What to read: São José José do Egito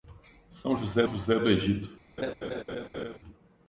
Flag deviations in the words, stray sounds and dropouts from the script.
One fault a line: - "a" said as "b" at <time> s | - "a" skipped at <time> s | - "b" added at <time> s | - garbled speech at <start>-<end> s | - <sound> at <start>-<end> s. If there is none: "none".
- laugh at 2.2-3.2 s